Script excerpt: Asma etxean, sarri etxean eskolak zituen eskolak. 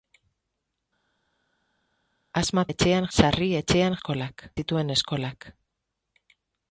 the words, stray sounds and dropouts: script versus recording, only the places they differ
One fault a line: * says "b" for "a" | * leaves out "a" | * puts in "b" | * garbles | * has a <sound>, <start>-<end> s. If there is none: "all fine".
all fine